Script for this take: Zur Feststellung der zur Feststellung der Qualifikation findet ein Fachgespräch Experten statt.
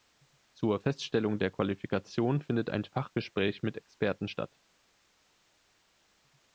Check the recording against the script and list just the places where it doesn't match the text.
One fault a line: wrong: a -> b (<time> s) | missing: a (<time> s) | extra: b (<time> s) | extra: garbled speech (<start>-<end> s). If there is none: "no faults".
missing: zur Feststellung der (1.5 s)
extra: mit (3.6 s)